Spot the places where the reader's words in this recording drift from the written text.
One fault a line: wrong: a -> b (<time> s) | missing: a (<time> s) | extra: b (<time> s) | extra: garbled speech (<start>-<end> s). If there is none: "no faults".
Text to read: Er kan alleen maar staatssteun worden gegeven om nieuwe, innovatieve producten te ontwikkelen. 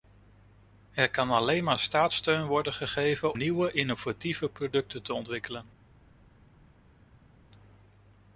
missing: om (3.4 s)